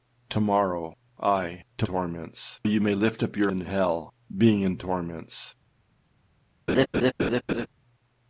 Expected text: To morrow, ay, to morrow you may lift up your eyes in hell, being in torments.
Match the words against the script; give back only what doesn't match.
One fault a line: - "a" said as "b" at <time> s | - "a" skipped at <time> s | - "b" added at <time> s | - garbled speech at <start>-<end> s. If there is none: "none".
- "morrow" said as "torments" at 1.8 s
- "eyes" skipped at 3.5 s